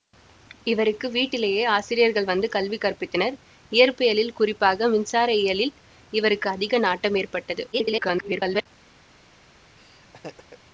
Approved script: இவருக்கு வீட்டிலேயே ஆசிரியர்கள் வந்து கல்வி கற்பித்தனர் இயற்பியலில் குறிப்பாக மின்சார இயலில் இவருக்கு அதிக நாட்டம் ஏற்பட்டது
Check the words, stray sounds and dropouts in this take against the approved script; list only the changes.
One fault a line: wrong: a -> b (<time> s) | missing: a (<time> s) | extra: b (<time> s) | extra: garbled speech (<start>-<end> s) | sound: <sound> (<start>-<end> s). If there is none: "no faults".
extra: garbled speech (7.7-8.7 s)
sound: laugh (9.8-10.6 s)